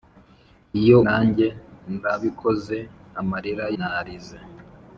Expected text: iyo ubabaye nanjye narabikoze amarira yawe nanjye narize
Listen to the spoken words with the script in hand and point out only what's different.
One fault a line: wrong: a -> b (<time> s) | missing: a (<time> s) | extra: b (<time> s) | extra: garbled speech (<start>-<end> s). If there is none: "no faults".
missing: ubabaye (1.0 s)
missing: yawe nanjye (3.7 s)